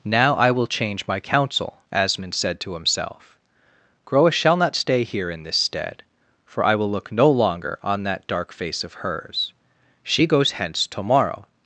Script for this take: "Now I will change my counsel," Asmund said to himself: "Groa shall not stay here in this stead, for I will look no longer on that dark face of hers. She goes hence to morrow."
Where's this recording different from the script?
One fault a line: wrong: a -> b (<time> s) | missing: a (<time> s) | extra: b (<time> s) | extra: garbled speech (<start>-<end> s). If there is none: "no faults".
no faults